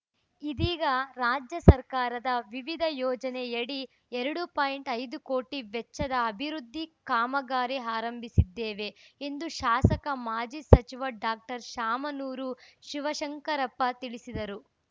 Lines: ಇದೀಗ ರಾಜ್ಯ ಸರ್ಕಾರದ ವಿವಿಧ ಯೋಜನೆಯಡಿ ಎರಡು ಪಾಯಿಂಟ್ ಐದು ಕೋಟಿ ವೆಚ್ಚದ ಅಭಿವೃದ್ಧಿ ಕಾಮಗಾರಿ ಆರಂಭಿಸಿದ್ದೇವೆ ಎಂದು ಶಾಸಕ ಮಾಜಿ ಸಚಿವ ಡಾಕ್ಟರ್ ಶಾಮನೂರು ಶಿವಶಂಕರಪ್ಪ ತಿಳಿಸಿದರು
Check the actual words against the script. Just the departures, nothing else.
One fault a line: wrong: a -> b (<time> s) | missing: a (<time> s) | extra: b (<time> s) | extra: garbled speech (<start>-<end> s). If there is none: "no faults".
no faults